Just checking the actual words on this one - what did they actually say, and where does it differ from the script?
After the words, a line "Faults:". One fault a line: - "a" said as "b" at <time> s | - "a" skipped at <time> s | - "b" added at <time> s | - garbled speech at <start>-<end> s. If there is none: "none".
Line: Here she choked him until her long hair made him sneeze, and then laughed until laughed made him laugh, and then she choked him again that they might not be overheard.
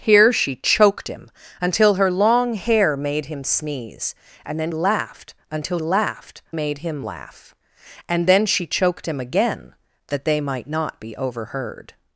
Here she choked him until her long hair made him sneeze, and then laughed until laughed made him laugh, and then she choked him again that they might not be overheard.
Faults:
none